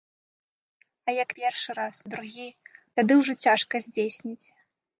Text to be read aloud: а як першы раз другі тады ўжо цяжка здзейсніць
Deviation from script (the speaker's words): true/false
false